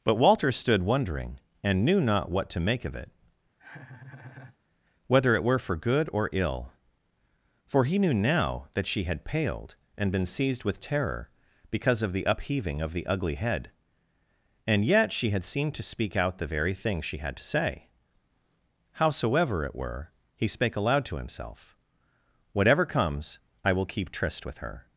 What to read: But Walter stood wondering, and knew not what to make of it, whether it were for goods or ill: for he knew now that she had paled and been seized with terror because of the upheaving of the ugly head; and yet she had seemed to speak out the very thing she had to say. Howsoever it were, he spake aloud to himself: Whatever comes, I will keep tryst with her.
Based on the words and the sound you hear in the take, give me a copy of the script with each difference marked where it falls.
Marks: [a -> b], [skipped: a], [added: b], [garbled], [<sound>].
But Walter stood wondering, and knew not what to make of it, [laugh] whether it were for [goods -> good] or ill: for he knew now that she had paled and been seized with terror because of the upheaving of the ugly head; and yet she had seemed to speak out the very thing she had to say. Howsoever it were, he spake aloud to himself: Whatever comes, I will keep tryst with her.